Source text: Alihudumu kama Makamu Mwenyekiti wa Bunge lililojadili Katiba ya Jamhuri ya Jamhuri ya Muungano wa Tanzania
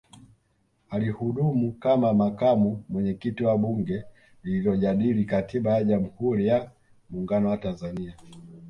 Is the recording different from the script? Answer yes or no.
yes